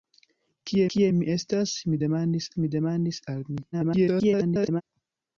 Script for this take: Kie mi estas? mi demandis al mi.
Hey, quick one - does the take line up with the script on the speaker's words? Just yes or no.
no